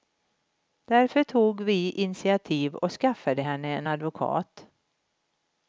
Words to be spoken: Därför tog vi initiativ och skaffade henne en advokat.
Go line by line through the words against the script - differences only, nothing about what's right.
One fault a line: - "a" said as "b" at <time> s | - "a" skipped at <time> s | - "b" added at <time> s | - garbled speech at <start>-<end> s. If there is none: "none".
none